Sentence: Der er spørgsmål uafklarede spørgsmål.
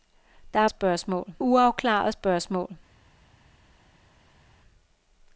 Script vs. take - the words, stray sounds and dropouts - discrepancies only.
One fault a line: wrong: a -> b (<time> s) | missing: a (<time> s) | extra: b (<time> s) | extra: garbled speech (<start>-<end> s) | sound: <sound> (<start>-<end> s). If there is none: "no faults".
no faults